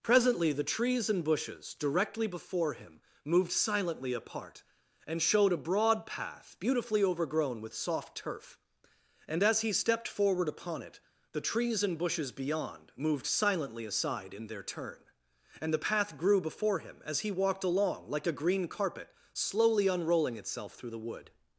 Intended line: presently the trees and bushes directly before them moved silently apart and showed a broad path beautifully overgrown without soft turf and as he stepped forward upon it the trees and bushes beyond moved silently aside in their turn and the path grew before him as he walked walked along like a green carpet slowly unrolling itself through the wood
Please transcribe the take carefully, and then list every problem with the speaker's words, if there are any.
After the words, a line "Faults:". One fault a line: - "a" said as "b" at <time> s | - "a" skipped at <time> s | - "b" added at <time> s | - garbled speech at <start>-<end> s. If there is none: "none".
presently the trees and bushes directly before him moved silently apart and showed a broad path beautifully overgrown with soft turf and as he stepped forward upon it the trees and bushes beyond moved silently aside in their turn and the path grew before him as he walked along like a green carpet slowly unrolling itself through the wood
Faults:
- "them" said as "him" at 2.7 s
- "without" said as "with" at 7.6 s
- "walked" skipped at 17.7 s